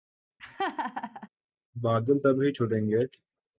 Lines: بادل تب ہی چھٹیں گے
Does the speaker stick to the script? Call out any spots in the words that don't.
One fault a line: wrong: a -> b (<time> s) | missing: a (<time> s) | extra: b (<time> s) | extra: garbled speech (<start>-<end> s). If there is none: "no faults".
no faults